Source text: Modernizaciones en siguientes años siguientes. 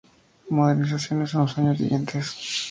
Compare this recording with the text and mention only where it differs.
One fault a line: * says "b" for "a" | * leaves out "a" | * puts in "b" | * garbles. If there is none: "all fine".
* says "los" for "siguientes"